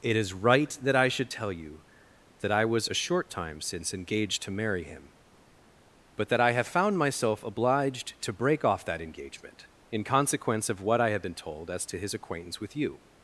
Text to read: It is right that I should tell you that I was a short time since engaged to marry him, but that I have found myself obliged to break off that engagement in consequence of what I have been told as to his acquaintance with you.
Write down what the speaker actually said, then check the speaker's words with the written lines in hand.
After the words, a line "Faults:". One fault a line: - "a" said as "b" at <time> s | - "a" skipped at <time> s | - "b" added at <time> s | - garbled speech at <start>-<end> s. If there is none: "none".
It is right that I should tell you that I was a short time since engaged to marry him, but that I have found myself obliged to break off that engagement in consequence of what I have been told as to his acquaintance with you.
Faults:
none